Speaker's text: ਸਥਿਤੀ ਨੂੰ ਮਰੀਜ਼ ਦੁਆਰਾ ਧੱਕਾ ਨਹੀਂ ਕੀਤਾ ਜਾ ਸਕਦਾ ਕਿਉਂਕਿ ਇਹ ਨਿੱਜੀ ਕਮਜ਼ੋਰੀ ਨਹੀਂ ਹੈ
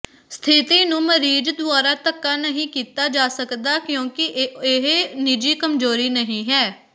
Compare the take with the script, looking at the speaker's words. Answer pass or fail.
pass